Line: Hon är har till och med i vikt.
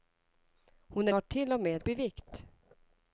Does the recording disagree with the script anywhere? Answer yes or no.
no